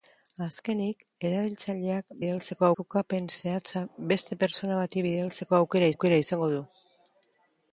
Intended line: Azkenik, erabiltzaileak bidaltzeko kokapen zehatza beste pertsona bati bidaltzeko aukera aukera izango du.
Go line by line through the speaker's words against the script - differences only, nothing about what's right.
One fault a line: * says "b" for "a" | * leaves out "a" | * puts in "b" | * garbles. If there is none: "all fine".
all fine